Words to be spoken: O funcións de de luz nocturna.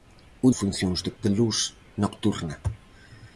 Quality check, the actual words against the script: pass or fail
pass